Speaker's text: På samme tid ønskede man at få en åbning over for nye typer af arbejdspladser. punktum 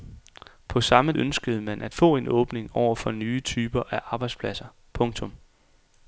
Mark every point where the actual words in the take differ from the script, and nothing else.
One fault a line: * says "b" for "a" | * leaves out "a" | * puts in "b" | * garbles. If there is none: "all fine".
* leaves out "tid"